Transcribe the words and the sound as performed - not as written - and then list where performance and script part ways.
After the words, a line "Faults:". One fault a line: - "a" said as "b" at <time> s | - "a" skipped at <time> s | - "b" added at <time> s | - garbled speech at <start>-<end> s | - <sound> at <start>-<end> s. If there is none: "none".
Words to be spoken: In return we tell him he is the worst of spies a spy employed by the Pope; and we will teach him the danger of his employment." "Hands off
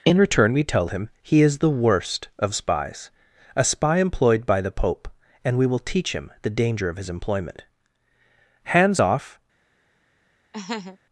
In return we tell him he is the worst of spies a spy employed by the Pope; and we will teach him the danger of his employment." "Hands off
Faults:
- laugh at 10.5-11.0 s